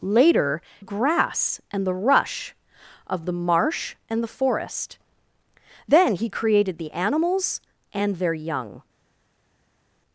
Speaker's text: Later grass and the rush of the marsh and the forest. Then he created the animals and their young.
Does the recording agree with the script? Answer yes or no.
yes